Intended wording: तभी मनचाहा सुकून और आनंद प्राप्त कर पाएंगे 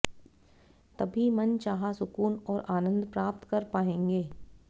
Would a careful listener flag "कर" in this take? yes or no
no